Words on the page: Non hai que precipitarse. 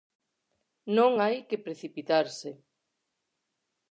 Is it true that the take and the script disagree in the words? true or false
false